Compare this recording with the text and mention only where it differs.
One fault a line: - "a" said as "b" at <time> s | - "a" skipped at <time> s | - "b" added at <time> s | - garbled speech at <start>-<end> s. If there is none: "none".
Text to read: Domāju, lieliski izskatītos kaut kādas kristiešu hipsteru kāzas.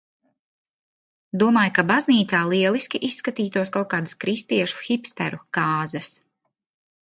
- "ka baznīcā" added at 1.8 s